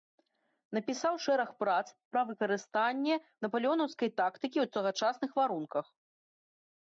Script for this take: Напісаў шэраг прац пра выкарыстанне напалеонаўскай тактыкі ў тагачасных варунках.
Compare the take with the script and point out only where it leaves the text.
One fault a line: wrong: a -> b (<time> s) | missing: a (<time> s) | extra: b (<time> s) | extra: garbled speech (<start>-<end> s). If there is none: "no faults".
no faults